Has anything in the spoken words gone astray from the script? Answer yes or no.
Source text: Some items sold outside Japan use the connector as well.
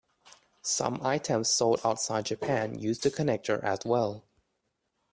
no